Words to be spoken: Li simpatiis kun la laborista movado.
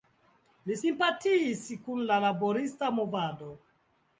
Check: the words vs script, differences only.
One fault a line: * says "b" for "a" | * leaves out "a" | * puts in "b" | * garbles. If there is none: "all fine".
all fine